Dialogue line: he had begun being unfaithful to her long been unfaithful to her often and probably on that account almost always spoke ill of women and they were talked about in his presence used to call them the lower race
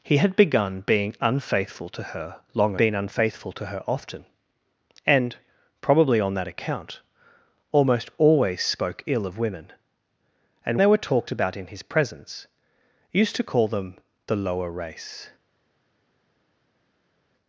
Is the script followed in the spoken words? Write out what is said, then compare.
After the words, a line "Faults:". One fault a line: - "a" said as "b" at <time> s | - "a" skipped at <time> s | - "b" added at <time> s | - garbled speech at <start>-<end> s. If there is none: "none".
he had begun being unfaithful to her long been unfaithful to her often and probably on that account almost always spoke ill of women and they were talked about in his presence used to call them the lower race
Faults:
none